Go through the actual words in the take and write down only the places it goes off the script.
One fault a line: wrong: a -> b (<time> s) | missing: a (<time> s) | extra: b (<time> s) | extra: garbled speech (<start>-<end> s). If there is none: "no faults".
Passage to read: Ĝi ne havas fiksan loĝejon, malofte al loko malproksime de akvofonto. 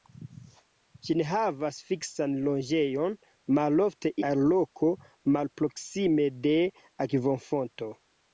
no faults